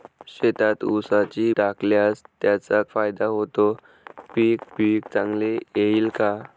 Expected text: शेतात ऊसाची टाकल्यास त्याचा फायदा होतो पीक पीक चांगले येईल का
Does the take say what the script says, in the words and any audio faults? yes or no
yes